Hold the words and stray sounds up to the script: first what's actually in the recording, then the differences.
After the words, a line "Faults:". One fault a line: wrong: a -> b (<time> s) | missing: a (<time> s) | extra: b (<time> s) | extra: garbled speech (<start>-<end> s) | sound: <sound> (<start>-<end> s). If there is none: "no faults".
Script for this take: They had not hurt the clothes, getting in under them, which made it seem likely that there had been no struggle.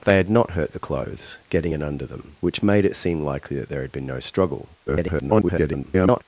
They had not hurt the clothes, getting in under them, which made it seem likely that there had been no struggle. [garbled]
Faults:
extra: garbled speech (4.9-6.2 s)